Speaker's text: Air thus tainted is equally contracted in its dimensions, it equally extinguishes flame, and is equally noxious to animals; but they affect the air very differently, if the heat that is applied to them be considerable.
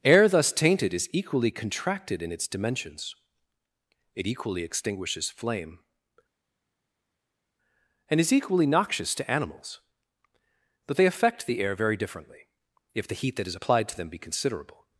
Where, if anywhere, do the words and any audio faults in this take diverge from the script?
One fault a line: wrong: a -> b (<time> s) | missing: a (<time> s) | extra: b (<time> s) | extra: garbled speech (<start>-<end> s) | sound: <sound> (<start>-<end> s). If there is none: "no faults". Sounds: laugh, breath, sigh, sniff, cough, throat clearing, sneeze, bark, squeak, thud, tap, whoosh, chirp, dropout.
no faults